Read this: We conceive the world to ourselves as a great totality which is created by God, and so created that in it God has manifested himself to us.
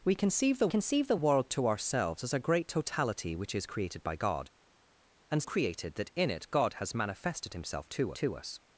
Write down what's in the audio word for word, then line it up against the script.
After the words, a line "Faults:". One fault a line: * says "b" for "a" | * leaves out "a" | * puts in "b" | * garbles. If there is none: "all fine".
We conceive the conceive the world to ourselves as a great totality which is created by God, and created that in it God has manifested himself to to us.
Faults:
* puts in "conceive the"
* leaves out "so"
* puts in "to"